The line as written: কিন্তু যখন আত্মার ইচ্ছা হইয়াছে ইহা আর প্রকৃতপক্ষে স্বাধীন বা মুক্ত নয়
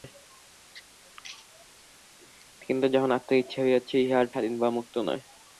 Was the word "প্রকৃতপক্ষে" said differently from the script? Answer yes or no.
yes